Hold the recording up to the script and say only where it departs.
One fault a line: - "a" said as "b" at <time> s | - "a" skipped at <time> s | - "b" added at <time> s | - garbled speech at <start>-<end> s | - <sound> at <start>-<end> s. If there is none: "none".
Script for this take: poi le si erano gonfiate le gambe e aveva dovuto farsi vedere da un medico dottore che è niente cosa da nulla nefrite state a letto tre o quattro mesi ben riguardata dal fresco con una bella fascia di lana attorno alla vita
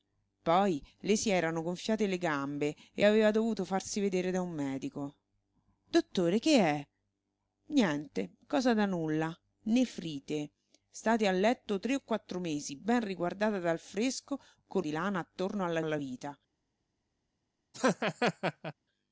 - "una bella fascia" skipped at 14.9 s
- "alla" added at 15.8 s
- laugh at 17.7-18.7 s